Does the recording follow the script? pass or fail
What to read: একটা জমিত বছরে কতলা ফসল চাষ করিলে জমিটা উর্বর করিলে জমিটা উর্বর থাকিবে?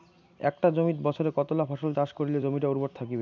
fail